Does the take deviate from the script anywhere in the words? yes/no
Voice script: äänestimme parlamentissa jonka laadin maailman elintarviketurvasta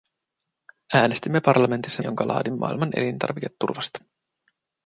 no